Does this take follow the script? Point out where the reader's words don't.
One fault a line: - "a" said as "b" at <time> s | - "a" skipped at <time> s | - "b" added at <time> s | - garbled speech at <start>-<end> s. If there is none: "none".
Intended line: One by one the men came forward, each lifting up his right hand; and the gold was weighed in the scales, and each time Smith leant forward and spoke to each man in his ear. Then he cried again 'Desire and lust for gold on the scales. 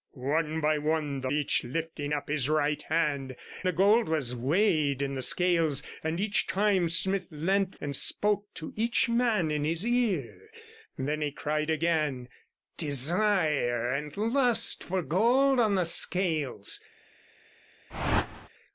- "men came forward" skipped at 1.3 s
- "and" skipped at 3.4 s
- "forward" skipped at 7.7 s